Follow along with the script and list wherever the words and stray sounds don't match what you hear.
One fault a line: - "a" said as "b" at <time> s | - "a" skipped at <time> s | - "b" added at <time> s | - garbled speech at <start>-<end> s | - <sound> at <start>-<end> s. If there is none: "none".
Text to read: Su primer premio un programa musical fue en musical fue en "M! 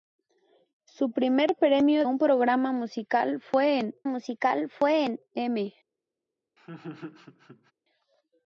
- laugh at 6.6-7.7 s